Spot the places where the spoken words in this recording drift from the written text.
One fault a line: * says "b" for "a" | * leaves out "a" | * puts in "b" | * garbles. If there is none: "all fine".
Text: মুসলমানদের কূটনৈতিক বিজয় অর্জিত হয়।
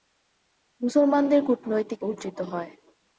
* leaves out "বিজয়"